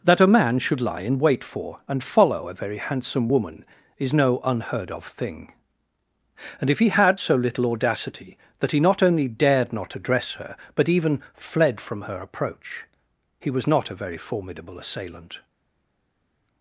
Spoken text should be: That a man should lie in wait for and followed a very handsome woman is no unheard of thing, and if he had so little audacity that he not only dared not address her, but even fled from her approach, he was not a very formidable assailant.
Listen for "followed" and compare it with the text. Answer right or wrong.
wrong